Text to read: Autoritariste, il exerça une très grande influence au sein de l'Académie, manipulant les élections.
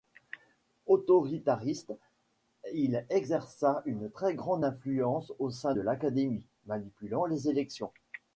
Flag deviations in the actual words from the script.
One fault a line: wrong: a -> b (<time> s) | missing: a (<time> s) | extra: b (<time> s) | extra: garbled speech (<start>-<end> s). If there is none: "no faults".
no faults